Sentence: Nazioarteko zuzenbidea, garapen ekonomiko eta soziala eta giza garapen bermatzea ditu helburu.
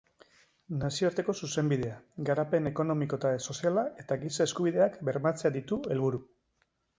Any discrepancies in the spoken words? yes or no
yes